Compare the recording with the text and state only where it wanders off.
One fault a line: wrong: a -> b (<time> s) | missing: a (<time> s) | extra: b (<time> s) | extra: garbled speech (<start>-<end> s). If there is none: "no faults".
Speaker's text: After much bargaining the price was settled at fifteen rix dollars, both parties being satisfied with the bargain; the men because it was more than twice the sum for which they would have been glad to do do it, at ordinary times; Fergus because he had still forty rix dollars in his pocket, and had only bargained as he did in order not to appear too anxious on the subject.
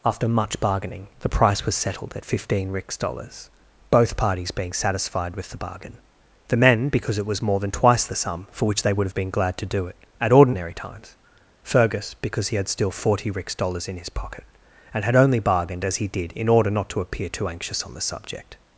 missing: do (9.9 s)